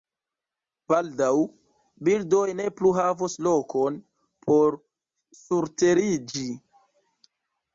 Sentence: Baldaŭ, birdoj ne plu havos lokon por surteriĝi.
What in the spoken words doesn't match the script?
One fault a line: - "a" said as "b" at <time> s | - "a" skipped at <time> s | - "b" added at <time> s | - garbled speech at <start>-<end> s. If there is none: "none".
none